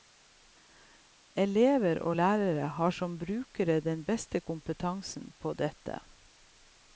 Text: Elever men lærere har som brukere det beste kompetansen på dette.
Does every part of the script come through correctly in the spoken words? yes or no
no